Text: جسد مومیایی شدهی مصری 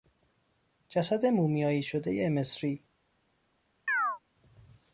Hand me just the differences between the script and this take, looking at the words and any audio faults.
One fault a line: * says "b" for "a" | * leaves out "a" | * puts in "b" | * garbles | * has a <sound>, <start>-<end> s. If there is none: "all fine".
* has a chirp, 3.9-4.2 s